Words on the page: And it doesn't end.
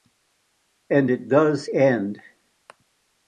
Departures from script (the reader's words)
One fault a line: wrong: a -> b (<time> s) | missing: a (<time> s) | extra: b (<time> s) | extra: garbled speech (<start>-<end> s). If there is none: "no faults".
wrong: doesn't -> does (1.3 s)